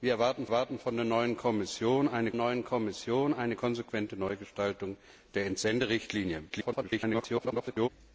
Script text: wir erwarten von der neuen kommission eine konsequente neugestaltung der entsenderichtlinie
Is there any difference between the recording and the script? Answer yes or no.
yes